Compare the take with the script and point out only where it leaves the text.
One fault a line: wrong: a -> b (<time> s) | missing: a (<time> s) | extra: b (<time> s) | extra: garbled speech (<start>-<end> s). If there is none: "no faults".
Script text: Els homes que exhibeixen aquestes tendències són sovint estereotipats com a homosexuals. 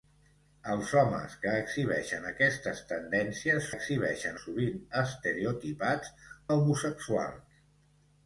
wrong: són -> exhibeixen (3.8 s)
missing: com (6.1 s)